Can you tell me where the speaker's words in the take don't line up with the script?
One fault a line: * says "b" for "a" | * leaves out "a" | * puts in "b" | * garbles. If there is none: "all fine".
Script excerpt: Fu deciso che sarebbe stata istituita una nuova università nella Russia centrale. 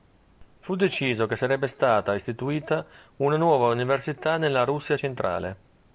all fine